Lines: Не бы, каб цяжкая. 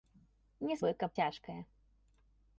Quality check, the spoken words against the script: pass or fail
pass